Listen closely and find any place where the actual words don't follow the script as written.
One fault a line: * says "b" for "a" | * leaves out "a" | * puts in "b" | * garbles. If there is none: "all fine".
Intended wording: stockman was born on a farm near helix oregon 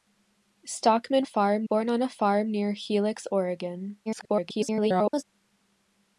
* says "farm" for "was"
* garbles